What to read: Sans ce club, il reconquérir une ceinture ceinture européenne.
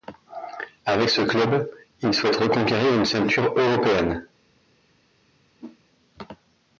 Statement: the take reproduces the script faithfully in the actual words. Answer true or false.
false